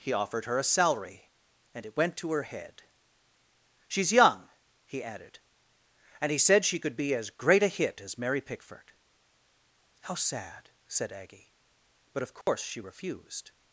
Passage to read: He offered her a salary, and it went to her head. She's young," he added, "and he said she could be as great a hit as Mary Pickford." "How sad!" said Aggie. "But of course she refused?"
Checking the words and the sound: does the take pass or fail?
fail